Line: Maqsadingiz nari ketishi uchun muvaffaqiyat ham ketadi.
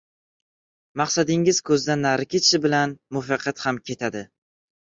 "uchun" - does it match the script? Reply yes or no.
no